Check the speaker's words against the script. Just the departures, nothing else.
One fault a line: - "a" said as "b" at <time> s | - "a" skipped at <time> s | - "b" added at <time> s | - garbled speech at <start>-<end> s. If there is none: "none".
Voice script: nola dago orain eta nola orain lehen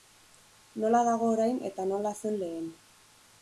- "orain" said as "zen" at 2.2 s